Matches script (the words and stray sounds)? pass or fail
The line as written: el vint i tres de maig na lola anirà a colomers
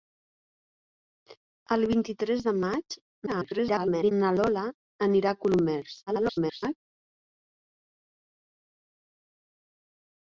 fail